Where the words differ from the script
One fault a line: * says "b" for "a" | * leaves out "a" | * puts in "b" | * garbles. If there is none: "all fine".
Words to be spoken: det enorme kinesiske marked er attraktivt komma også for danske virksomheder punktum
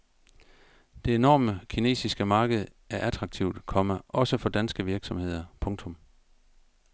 all fine